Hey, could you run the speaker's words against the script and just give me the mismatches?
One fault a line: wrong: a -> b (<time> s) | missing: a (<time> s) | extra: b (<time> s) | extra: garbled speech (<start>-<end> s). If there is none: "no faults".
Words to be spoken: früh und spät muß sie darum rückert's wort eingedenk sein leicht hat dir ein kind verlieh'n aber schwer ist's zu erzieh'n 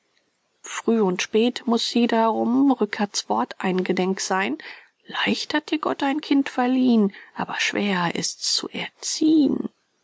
extra: gott (5.8 s)